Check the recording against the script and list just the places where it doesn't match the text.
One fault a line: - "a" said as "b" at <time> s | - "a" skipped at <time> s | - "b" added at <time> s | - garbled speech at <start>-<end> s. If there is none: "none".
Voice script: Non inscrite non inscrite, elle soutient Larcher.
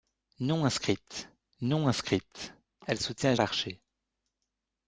none